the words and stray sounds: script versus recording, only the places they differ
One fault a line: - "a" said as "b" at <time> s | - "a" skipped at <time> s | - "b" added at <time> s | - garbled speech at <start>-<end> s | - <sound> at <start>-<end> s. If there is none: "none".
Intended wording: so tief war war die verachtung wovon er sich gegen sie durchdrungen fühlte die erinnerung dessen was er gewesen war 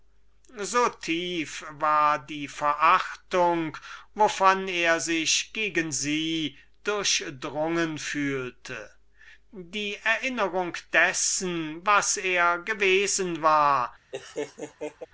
- "war" skipped at 2.2 s
- laugh at 14.1-15.1 s